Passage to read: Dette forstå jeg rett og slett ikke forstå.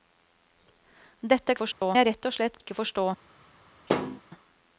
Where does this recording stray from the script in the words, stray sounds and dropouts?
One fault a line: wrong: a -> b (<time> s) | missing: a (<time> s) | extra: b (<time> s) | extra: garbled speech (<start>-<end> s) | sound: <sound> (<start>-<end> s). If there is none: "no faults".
sound: dropout (1.7-1.8 s)
sound: thud (3.9-4.2 s)